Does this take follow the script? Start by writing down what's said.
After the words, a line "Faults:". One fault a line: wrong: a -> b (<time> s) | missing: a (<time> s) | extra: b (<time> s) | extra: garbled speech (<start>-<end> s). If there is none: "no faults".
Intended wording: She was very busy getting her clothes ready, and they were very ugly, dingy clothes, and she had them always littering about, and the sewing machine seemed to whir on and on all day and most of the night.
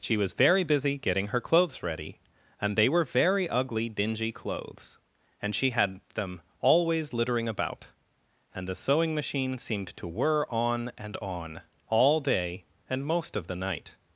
She was very busy getting her clothes ready, and they were very ugly, dingy clothes, and she had them always littering about, and the sewing machine seemed to whir on and on all day and most of the night.
Faults:
no faults